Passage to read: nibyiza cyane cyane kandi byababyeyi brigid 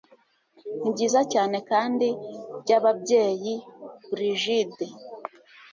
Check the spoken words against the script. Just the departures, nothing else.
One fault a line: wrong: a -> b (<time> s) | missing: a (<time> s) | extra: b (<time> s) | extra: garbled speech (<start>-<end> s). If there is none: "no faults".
missing: cyane (1.6 s)